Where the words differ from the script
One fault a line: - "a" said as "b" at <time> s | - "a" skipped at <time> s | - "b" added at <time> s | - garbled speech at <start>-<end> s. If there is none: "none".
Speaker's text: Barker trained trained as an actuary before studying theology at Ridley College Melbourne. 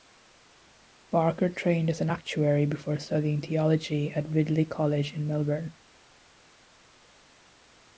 - "trained" skipped at 1.9 s
- "in" added at 5.1 s